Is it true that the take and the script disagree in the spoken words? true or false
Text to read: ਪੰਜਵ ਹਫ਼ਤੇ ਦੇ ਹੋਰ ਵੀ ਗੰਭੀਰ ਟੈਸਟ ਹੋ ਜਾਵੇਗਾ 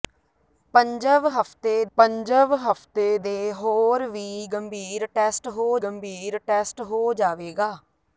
true